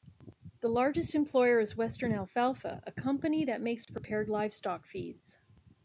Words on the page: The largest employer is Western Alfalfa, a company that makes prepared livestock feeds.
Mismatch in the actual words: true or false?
false